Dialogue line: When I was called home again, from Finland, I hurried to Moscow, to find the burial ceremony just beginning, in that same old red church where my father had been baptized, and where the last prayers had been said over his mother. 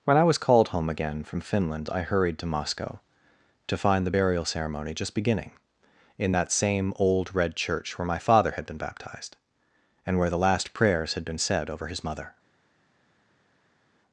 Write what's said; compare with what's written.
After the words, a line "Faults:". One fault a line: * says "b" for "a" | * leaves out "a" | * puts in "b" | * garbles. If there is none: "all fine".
When I was called home again, from Finland, I hurried to Moscow, to find the burial ceremony just beginning, in that same old red church where my father had been baptized, and where the last prayers had been said over his mother.
Faults:
all fine